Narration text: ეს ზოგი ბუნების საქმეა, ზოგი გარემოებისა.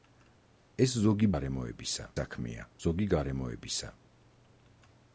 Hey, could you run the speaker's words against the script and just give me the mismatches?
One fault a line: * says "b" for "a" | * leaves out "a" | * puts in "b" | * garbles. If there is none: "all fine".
* says "გარემოებისა" for "ბუნების"